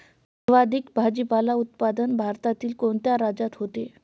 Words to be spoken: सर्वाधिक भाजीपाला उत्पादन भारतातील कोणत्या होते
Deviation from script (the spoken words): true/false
true